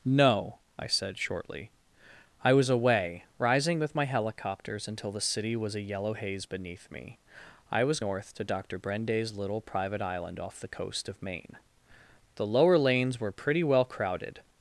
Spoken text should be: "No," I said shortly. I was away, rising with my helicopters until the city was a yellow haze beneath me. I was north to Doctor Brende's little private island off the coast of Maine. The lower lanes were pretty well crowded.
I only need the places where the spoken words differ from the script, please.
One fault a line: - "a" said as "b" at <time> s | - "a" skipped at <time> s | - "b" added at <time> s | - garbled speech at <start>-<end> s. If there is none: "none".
none